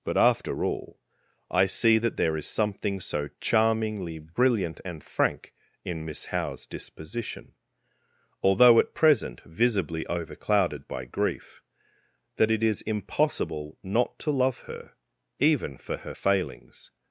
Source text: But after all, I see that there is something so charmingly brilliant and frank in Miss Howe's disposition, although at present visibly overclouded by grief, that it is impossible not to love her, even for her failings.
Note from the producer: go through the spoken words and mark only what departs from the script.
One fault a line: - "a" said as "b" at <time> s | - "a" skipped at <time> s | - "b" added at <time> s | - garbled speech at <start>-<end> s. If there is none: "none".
none